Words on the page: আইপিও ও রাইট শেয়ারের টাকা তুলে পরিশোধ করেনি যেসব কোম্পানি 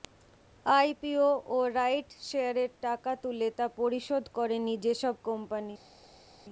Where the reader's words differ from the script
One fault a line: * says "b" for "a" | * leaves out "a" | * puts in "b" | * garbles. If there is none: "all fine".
* puts in "তা"